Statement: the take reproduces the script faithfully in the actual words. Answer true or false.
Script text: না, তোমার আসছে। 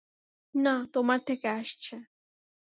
false